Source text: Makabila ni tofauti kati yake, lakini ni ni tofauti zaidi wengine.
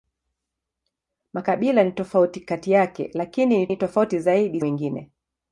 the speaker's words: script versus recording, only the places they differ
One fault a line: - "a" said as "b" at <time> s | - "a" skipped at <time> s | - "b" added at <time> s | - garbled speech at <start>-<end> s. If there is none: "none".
none